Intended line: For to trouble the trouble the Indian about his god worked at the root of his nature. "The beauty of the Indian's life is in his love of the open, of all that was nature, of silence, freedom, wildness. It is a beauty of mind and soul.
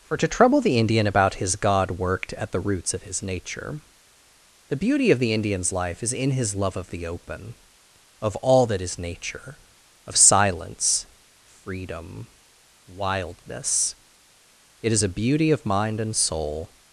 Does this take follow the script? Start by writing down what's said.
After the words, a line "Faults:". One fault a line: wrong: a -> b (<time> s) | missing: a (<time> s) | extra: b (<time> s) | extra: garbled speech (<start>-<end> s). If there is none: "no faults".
For to trouble the Indian about his god worked at the roots of his nature. "The beauty of the Indian's life is in his love of the open, of all that is nature, of silence, freedom, wildness. It is a beauty of mind and soul.
Faults:
missing: trouble the (0.8 s)
wrong: root -> roots (2.6 s)
wrong: was -> is (8.8 s)